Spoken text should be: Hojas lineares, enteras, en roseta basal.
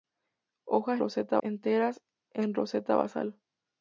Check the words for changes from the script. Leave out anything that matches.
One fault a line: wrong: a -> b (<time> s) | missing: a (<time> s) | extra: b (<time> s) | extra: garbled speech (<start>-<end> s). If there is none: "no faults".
wrong: lineares -> roseta (1.0 s)